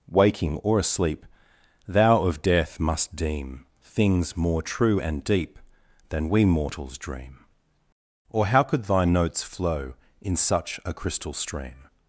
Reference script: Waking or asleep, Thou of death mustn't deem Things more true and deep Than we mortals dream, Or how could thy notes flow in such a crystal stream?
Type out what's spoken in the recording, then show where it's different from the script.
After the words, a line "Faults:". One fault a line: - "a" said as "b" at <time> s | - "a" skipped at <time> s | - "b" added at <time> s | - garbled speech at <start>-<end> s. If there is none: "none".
Waking or asleep, Thou of death must deem Things more true and deep Than we mortals dream, Or how could thy notes flow in such a crystal stream?
Faults:
- "mustn't" said as "must" at 2.8 s